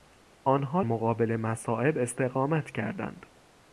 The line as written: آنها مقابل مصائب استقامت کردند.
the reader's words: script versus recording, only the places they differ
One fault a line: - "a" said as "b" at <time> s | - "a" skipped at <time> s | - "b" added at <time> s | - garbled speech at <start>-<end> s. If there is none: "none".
none